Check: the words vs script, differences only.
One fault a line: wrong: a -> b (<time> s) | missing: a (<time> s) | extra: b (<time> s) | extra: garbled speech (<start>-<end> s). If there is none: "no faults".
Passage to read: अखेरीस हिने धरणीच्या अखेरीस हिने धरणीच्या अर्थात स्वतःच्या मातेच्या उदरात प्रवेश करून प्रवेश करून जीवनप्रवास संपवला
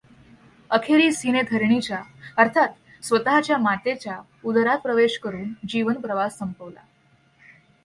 missing: अखेरीस हिने धरणीच्या (2.0 s)
missing: प्रवेश करून (5.5 s)